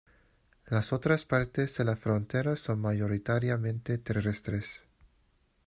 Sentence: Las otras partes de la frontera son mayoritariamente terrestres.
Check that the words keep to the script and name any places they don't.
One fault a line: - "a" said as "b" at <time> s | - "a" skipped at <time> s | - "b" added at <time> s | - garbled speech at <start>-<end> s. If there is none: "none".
none